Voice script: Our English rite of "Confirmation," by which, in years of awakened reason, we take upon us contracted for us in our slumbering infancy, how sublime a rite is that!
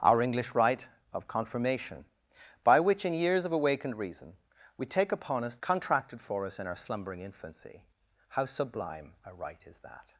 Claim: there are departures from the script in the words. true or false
false